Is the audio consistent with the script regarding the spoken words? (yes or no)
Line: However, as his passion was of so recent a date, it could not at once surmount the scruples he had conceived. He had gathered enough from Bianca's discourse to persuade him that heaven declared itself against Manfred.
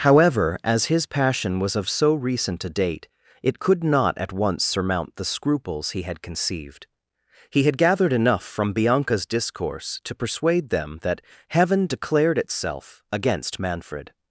no